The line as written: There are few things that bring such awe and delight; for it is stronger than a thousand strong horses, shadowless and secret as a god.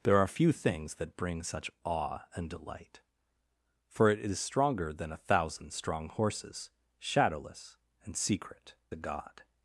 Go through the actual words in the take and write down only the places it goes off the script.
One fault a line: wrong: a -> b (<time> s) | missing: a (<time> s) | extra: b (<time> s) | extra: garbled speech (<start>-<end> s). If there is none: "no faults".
missing: as (8.7 s)